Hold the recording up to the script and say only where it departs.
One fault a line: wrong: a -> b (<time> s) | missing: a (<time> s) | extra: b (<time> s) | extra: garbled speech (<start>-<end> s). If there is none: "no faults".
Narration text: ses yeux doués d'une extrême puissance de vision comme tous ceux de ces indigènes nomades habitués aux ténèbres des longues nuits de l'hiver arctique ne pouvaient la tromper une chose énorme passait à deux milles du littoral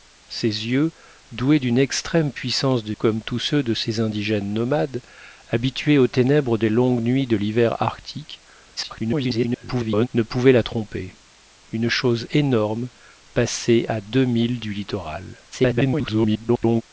missing: vision (2.9 s)
extra: garbled speech (8.8-10.1 s)
extra: garbled speech (15.5-16.8 s)